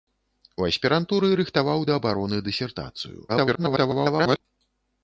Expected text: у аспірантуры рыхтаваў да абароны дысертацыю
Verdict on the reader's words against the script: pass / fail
fail